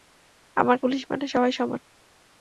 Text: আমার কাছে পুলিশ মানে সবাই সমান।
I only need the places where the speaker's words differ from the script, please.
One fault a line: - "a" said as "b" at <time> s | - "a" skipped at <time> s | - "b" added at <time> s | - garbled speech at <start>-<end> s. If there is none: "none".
- "কাছে" skipped at 0.8 s